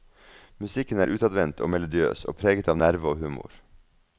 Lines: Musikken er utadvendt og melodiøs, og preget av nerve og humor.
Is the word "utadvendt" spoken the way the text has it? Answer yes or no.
yes